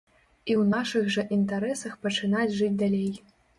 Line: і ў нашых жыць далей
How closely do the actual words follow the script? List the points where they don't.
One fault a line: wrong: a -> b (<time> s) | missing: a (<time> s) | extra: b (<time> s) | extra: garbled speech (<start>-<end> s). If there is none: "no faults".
extra: жа інтарэсах пачынаць (1.2 s)